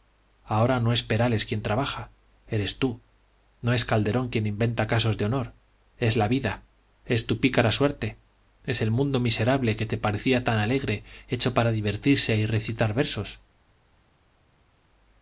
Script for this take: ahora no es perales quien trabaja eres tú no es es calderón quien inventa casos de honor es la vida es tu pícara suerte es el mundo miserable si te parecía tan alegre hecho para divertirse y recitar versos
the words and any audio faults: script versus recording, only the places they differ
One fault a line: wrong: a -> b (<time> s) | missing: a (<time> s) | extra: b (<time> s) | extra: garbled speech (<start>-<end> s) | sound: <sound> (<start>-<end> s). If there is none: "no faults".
missing: es (3.9 s)
wrong: si -> que (9.7 s)